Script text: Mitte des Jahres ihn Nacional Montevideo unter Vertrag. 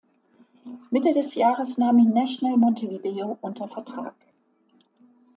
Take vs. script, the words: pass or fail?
fail